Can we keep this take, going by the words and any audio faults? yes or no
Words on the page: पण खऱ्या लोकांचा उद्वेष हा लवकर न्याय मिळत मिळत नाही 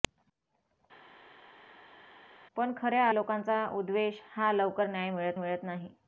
yes